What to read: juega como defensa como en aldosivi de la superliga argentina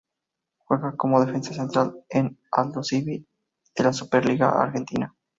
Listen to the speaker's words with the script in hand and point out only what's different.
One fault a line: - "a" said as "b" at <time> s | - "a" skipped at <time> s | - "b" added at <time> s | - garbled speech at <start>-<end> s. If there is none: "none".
- "como" said as "central" at 1.5 s